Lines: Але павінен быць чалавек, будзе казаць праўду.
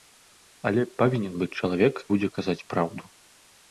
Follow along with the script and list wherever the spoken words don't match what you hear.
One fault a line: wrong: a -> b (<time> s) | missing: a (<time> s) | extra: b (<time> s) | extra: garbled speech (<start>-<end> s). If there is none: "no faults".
no faults